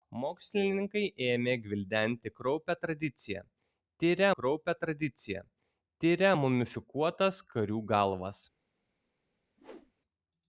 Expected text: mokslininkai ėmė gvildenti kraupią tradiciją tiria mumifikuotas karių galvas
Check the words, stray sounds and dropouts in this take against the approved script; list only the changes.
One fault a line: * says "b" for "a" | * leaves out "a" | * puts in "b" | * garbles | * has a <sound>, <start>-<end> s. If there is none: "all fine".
* puts in "kraupią tradiciją tiria"
* has a whoosh, 9.6-9.9 s